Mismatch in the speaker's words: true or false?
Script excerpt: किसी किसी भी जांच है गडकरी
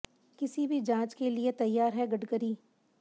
true